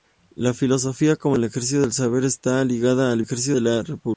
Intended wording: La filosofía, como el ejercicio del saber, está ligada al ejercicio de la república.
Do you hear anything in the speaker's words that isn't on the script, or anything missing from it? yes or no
no